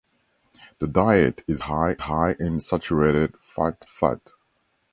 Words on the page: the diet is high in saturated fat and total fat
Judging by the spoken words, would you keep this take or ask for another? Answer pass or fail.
fail